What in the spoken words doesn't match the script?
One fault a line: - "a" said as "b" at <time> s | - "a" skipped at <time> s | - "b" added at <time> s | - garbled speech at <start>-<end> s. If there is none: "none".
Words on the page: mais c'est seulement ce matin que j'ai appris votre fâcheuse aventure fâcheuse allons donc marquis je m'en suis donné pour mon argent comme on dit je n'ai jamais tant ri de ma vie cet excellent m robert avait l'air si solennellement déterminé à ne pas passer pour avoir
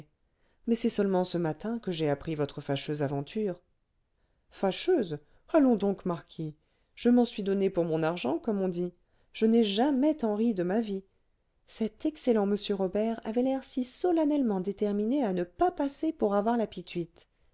none